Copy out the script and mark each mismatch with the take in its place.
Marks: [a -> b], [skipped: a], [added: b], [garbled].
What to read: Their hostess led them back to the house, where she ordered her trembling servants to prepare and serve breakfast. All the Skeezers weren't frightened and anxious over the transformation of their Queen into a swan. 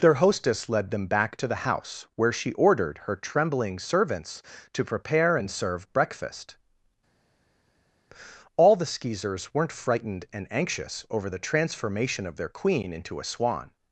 Their hostess led them back to the house, where she ordered her trembling servants to prepare and serve breakfast. All the Skeezers weren't frightened and anxious over the transformation of their Queen into a swan.